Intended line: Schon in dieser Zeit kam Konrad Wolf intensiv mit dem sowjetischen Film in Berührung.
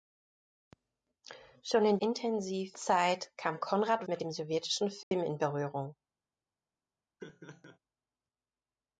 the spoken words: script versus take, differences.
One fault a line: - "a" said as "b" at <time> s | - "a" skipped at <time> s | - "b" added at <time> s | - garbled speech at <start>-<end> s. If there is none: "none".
- "dieser" said as "intensiv" at 2.0 s
- "Wolf intensiv" skipped at 4.1 s